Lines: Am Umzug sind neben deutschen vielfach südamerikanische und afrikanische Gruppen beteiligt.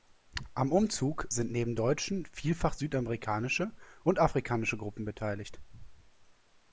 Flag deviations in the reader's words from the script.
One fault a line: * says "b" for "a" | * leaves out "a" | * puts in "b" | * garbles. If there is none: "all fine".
all fine